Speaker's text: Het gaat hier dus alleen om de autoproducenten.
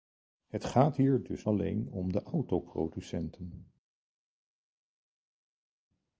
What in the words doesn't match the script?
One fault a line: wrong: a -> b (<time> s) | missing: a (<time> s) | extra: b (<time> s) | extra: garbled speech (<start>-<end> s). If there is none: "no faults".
no faults